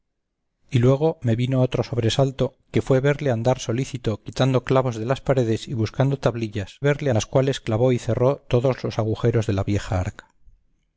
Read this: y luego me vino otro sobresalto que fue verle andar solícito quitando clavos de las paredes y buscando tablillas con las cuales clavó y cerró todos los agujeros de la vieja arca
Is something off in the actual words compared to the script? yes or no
yes